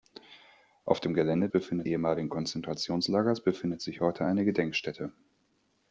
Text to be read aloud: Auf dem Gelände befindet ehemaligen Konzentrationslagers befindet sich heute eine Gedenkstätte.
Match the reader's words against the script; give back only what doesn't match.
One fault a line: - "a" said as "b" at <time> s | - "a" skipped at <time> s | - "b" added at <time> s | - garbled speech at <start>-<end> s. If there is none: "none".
none